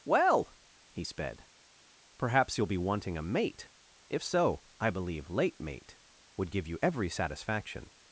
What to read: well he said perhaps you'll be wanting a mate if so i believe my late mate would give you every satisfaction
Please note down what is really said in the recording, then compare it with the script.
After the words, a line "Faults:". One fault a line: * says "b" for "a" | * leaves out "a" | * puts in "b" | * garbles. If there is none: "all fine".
well he sped perhaps you'll be wanting a mate if so i believe late mate would give you every satisfaction
Faults:
* says "sped" for "said"
* leaves out "my"